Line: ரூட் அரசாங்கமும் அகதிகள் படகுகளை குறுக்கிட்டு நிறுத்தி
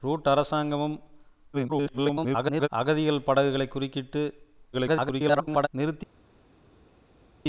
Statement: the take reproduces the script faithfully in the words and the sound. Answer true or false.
false